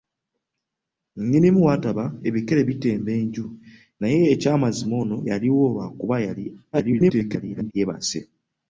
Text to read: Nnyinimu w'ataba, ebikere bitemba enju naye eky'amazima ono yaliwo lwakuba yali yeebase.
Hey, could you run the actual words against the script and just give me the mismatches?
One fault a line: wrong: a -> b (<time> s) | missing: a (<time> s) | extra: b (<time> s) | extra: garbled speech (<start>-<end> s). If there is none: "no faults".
extra: garbled speech (6.7-7.7 s)